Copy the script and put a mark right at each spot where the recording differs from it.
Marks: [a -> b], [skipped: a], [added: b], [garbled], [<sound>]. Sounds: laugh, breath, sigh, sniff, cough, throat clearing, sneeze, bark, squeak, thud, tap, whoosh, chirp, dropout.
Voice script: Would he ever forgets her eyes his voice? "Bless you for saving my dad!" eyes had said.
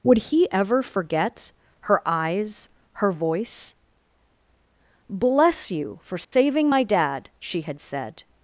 Would he ever [forgets -> forget] her eyes [his -> her] voice? "Bless you for saving [dropout] my dad!" [eyes -> she] had said.